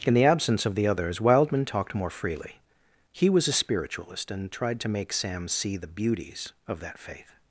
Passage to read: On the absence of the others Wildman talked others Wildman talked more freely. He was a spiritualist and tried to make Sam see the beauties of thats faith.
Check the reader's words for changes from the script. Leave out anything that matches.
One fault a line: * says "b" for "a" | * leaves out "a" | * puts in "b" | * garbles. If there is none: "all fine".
* says "In" for "On"
* leaves out "others Wildman talked"
* says "that" for "thats"